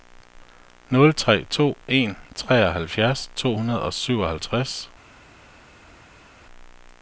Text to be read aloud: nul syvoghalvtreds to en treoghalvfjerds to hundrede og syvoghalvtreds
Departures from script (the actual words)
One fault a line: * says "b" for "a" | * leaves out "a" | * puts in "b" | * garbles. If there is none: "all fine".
* says "tre" for "syvoghalvtreds"